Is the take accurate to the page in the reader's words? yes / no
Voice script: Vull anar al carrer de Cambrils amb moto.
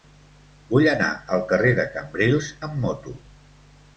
yes